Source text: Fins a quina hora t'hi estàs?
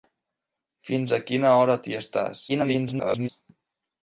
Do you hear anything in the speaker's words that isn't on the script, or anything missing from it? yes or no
yes